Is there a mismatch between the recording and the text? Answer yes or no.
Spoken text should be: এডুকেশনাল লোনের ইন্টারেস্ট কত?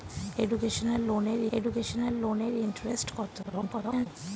yes